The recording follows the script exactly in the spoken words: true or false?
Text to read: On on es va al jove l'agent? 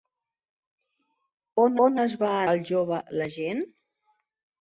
true